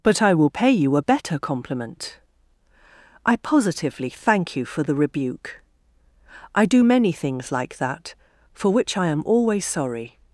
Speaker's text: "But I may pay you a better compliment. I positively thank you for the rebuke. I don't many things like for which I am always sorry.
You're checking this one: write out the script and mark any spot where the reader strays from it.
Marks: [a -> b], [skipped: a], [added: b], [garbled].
"But I [may -> will] pay you a better compliment. I positively thank you for the rebuke. I [don't -> do] many things like [added: that] for which I am always sorry.